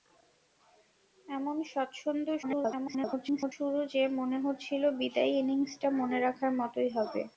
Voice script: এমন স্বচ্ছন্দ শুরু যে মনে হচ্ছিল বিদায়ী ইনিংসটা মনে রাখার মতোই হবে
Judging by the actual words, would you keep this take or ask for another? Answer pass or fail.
fail